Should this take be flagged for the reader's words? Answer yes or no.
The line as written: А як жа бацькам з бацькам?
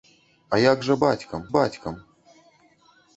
no